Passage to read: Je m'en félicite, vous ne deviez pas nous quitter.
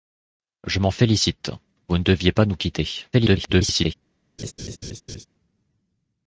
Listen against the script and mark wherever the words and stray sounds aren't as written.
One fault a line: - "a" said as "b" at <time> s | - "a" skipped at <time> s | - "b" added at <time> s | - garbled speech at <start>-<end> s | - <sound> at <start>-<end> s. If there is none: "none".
- garbled speech at 3.1-3.9 s
- laugh at 4.4-5.3 s